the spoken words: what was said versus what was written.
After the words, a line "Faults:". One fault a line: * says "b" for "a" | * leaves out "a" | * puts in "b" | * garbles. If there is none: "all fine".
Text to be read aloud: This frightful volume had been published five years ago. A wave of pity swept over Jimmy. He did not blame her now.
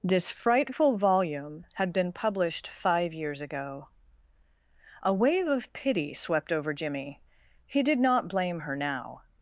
This frightful volume had been published five years ago. A wave of pity swept over Jimmy. He did not blame her now.
Faults:
all fine